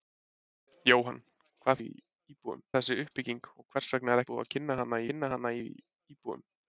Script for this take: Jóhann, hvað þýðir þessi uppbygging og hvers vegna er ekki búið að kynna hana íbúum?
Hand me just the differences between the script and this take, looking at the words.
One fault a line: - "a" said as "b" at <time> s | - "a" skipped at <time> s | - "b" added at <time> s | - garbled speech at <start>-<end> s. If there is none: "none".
- "þýðir" said as "íbúum" at 1.8 s
- "ekki" skipped at 4.2 s
- "kynna hana" added at 5.1 s